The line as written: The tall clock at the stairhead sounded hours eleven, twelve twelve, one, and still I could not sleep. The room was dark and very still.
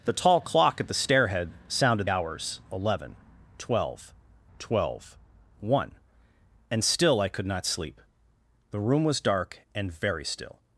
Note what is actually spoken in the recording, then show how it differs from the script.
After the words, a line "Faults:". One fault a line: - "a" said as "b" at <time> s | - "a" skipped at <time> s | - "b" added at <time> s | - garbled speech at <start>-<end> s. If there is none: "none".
The tall clock at the stairhead sounded hours eleven, twelve twelve, one, and still I could not sleep. The room was dark and very still.
Faults:
none